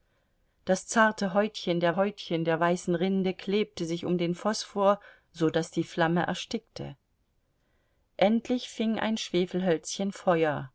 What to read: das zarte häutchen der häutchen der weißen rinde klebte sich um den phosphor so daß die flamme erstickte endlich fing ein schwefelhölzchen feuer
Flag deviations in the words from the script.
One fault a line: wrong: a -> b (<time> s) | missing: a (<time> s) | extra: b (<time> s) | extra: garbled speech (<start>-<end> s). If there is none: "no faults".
no faults